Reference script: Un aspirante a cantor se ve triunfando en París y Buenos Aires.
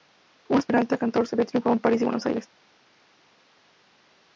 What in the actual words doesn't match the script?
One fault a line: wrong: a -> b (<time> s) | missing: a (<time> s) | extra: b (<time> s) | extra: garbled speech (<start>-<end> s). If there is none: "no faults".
no faults